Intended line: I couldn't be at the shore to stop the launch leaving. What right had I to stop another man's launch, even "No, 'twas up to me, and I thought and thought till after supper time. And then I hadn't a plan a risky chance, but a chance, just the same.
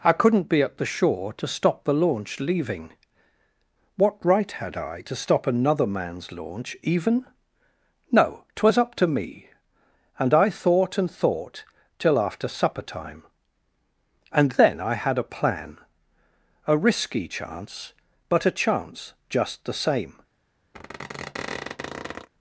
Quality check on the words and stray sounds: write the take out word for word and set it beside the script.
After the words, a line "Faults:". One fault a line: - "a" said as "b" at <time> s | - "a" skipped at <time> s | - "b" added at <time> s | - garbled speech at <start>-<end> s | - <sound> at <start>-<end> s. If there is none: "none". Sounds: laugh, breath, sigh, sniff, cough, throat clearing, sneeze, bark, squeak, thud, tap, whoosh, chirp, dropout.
I couldn't be at the shore to stop the launch leaving. What right had I to stop another man's launch, even "No, 'twas up to me, and I thought and thought till after supper time. And then I had a plan a risky chance, but a chance, just the same.
Faults:
- "hadn't" said as "had" at 14.9 s
- squeak at 20.7-22.3 s